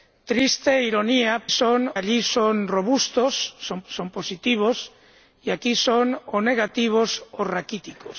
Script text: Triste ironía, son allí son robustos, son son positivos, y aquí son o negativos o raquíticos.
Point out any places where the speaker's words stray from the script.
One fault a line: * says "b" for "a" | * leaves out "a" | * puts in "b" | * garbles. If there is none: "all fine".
all fine